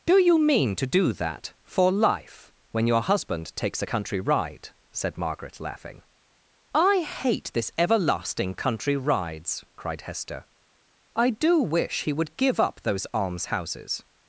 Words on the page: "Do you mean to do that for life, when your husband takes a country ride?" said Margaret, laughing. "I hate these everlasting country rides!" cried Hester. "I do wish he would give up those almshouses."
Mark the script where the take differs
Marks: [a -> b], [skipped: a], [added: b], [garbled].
"Do you mean to do that for life, when your husband takes a country ride?" said Margaret, laughing. "I hate [these -> this] everlasting country rides!" cried Hester. "I do wish he would give up those almshouses."